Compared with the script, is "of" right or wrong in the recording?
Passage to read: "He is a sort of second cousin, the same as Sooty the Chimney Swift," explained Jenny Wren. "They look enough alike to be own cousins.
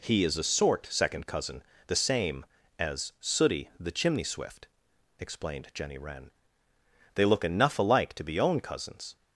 wrong